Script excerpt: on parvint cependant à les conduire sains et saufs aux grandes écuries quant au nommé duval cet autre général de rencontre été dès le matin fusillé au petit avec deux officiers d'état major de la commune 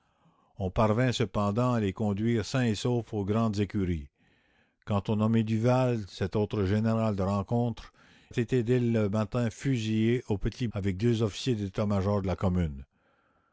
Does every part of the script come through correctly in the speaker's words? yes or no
yes